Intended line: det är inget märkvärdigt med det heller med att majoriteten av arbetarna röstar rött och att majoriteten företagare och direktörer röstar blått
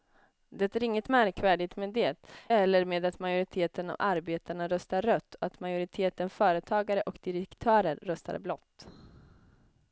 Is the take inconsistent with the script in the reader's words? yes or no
no